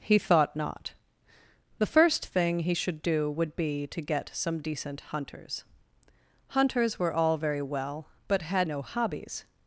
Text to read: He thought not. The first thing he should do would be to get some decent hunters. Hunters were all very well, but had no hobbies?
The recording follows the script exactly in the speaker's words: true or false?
true